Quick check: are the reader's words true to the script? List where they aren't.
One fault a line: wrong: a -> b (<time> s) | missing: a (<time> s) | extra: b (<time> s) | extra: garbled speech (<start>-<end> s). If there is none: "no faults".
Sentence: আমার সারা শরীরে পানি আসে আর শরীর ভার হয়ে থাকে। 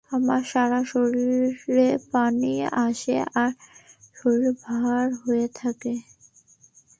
no faults